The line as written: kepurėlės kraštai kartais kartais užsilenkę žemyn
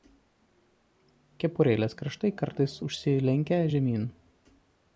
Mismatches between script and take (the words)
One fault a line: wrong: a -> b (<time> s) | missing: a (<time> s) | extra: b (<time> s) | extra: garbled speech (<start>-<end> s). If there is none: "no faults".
missing: kartais (2.8 s)